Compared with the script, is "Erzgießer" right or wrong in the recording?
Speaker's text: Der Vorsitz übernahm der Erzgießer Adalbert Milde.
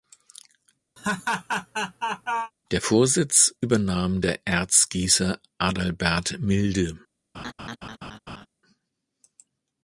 right